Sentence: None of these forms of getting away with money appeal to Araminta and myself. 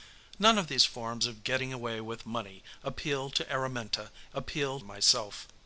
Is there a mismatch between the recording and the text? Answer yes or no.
yes